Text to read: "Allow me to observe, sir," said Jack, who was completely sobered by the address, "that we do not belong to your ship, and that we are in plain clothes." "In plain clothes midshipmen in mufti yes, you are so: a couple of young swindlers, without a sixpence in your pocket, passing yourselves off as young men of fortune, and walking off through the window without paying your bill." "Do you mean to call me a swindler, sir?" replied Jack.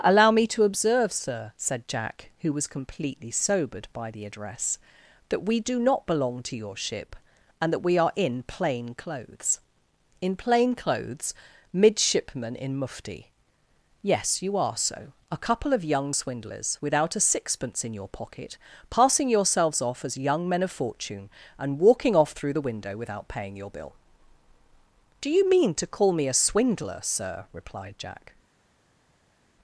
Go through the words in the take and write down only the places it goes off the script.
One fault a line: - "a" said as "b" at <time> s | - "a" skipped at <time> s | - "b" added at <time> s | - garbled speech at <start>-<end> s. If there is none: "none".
none